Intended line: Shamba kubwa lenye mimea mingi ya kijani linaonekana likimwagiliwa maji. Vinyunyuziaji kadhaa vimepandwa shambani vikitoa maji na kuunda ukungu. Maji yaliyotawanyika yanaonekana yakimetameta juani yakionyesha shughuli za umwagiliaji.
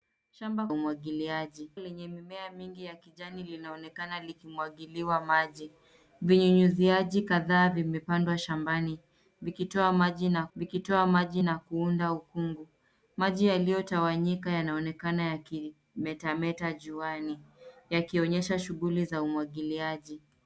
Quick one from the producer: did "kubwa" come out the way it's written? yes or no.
no